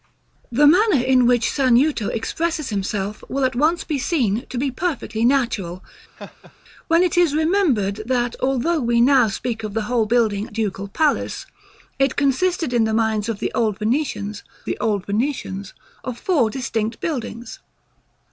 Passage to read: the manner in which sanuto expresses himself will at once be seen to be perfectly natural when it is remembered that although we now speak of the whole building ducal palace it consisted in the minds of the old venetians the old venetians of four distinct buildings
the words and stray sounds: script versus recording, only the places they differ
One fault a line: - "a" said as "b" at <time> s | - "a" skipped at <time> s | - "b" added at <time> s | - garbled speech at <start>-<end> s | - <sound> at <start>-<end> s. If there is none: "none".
- laugh at 6.2-6.5 s